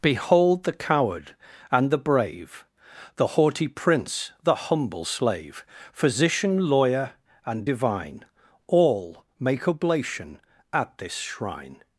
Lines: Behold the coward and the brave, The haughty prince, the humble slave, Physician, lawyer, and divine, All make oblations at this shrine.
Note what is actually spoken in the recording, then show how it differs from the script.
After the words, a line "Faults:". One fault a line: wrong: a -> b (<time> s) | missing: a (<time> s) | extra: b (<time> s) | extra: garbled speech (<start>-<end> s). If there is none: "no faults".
Behold the coward and the brave, The haughty prince, the humble slave, Physician, lawyer, and divine, All make oblation at this shrine.
Faults:
wrong: oblations -> oblation (9.7 s)